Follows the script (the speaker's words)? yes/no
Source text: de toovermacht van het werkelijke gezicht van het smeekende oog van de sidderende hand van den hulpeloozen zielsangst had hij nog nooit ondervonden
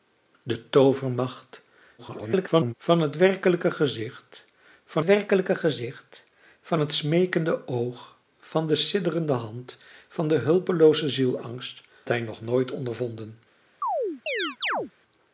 no